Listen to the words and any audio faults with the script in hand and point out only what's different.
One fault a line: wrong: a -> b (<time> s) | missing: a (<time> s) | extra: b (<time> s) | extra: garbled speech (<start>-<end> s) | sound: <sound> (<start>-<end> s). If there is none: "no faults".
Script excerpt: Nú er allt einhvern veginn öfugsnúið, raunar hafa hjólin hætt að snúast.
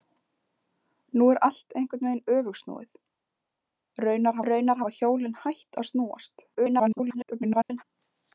extra: raunar (4.5 s)
extra: garbled speech (6.5-7.8 s)